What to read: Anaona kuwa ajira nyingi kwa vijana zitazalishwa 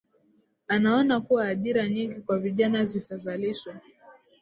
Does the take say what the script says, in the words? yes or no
yes